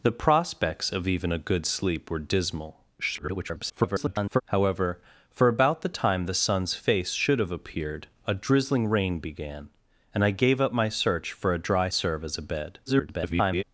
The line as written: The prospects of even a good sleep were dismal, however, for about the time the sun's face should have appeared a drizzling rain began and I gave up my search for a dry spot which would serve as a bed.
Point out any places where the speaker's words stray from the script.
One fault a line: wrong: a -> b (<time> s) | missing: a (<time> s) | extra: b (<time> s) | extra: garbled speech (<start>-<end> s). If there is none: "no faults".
extra: garbled speech (3.0-4.4 s)
missing: spot which would (11.9 s)
extra: garbled speech (12.9-13.6 s)